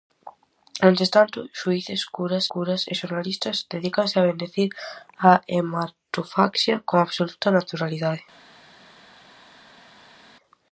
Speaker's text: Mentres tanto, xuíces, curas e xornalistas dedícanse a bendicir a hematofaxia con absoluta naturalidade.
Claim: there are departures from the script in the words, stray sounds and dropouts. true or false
true